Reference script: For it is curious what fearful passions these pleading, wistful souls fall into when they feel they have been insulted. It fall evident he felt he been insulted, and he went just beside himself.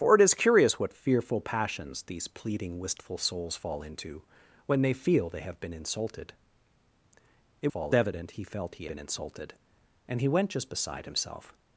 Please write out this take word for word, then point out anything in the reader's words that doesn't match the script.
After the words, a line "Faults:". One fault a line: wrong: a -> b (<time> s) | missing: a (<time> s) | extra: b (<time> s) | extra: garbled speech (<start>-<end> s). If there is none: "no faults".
For it is curious what fearful passions these pleading, wistful souls fall into when they feel they have been insulted. It fall evident he felt he been insulted, and he went just beside himself.
Faults:
no faults